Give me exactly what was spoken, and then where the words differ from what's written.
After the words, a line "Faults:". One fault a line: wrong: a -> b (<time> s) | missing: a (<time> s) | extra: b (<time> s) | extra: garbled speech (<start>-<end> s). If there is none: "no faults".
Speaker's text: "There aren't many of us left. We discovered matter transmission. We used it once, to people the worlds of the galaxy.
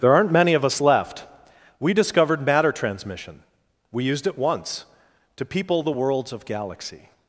"There aren't many of us left. We discovered matter transmission. We used it once, to people the worlds of galaxy.
Faults:
missing: the (6.5 s)